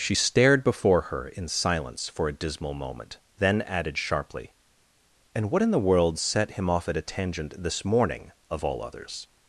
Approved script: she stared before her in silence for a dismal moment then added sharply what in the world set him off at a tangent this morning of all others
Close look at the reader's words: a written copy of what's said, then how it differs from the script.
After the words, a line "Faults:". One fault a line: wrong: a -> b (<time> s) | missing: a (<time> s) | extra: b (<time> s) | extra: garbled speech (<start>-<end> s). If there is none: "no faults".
she stared before her in silence for a dismal moment then added sharply and what in the world set him off at a tangent this morning of all others
Faults:
extra: and (5.3 s)